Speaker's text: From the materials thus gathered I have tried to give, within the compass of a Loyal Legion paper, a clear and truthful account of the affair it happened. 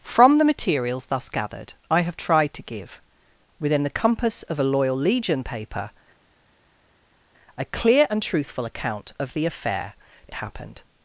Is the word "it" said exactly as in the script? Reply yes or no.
yes